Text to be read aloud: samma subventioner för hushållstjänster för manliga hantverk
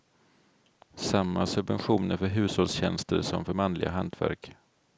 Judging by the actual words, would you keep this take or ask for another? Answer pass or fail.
fail